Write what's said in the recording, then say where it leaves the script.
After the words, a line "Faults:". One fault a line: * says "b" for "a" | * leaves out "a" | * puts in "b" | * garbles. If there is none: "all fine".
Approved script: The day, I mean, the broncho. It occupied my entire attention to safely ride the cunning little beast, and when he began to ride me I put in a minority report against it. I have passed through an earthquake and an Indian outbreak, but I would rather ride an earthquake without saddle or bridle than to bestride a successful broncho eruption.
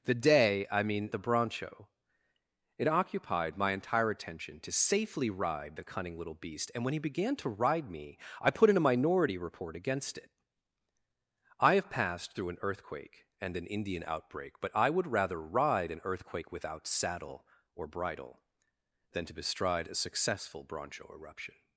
The day, I mean, the broncho. It occupied my entire attention to safely ride the cunning little beast, and when he began to ride me I put in a minority report against it. I have passed through an earthquake and an Indian outbreak, but I would rather ride an earthquake without saddle or bridle than to bestride a successful broncho eruption.
Faults:
all fine